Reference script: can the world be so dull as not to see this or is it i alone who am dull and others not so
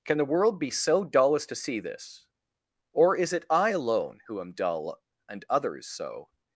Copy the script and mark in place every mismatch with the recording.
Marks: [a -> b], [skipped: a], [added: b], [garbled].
can the world be so dull as [skipped: not] to see this or is it i alone who am dull and others [skipped: not] so